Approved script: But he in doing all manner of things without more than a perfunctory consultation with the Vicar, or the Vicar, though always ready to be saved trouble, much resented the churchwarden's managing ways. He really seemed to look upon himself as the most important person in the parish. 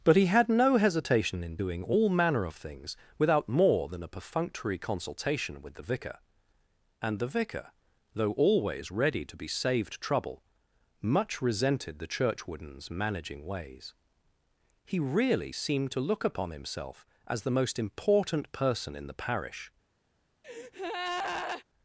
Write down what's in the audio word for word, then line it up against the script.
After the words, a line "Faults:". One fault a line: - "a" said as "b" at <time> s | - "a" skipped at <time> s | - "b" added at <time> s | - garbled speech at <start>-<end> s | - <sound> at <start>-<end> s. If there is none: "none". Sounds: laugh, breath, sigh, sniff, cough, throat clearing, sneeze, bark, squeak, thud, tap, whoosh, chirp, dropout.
But he had no hesitation in doing all manner of things without more than a perfunctory consultation with the Vicar, and the Vicar, though always ready to be saved trouble, much resented the churchwarden's managing ways. He really seemed to look upon himself as the most important person in the parish.
Faults:
- "had no hesitation" added at 0.2 s
- "or" said as "and" at 7.0 s
- breath at 20.4-21.6 s